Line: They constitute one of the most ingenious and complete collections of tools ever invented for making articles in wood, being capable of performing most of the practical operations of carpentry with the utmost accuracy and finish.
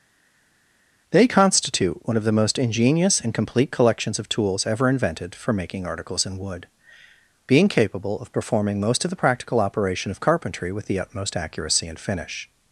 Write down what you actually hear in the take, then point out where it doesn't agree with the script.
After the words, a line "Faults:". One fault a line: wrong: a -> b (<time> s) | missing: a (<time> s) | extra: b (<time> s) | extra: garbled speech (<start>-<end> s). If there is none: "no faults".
They constitute one of the most ingenious and complete collections of tools ever invented for making articles in wood, being capable of performing most of the practical operation of carpentry with the utmost accuracy and finish.
Faults:
wrong: operations -> operation (9.6 s)